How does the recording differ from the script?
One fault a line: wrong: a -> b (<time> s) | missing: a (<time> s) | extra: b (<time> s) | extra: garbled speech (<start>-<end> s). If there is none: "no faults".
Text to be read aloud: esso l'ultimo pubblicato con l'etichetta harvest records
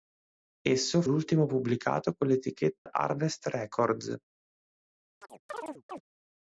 no faults